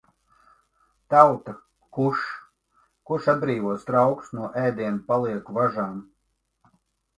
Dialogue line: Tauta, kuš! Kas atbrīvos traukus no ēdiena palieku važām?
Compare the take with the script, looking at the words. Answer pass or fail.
fail